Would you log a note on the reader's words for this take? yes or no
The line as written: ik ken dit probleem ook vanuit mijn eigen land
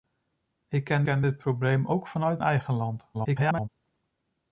yes